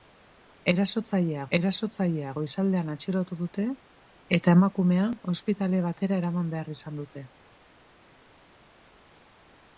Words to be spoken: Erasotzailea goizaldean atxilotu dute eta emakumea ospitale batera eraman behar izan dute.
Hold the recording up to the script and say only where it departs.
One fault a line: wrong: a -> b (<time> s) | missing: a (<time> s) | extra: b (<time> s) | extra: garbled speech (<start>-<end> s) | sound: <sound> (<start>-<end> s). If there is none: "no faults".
extra: erasotzailea (1.6 s)